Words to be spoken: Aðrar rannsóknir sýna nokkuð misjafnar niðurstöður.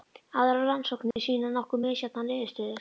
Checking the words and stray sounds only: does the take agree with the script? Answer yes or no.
no